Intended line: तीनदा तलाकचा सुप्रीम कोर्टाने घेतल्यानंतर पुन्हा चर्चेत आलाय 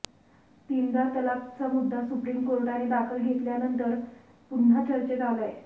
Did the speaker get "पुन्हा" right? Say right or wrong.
right